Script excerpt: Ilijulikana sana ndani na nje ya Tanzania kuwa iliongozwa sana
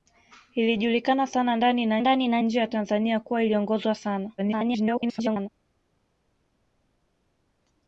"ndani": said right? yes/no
yes